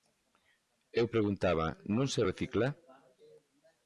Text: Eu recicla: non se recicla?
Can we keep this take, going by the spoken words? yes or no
no